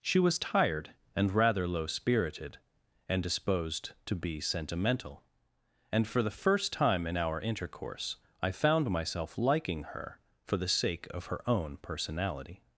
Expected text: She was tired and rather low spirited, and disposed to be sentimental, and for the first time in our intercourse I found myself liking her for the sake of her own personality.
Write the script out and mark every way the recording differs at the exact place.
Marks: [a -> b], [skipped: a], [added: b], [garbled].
She was tired and rather low spirited, and disposed to be sentimental, and for the first time in our intercourse I found myself liking her for the sake of her own personality.